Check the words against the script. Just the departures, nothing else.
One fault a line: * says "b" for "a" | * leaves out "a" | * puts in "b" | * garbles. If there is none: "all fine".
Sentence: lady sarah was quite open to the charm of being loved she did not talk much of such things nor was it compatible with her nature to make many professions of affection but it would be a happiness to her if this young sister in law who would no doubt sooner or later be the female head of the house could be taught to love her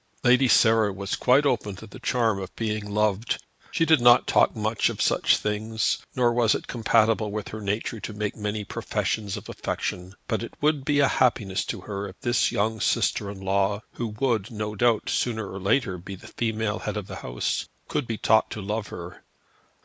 all fine